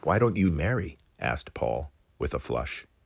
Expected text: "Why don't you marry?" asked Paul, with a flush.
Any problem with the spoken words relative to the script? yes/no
no